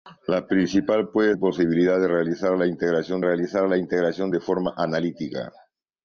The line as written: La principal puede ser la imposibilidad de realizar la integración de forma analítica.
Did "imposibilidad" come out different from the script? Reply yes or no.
yes